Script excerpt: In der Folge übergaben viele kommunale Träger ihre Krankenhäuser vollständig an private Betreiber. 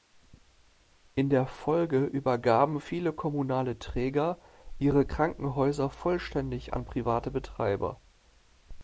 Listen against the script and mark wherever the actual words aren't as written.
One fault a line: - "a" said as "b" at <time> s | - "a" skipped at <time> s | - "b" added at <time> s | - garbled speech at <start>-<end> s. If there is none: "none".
none